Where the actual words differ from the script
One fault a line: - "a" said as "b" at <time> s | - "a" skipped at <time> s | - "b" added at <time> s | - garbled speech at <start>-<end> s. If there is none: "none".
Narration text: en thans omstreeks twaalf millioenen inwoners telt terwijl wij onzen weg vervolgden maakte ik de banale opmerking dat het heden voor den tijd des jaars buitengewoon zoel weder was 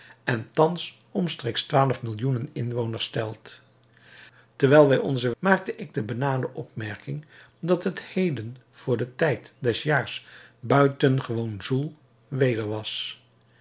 - "weg vervolgden" skipped at 5.3 s